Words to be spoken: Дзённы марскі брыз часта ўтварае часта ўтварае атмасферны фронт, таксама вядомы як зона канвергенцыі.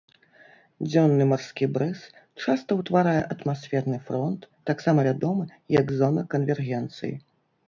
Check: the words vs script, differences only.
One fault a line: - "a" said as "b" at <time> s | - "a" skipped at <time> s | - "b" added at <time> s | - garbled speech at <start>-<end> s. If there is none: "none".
- "часта ўтварае" skipped at 3.2 s